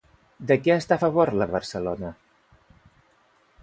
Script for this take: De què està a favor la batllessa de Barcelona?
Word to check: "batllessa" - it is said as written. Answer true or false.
false